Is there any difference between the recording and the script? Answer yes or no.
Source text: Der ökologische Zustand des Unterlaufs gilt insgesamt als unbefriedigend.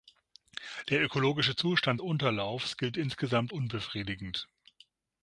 yes